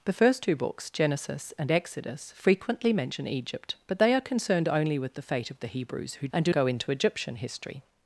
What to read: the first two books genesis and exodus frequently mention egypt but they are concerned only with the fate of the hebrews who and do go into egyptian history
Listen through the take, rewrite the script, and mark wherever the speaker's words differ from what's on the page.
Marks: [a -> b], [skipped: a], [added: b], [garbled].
the first two books genesis and exodus frequently mention egypt but they are concerned only with the fate of the hebrews who and do go into egyptian history